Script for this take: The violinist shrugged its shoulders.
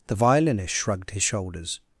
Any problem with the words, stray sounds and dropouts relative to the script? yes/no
yes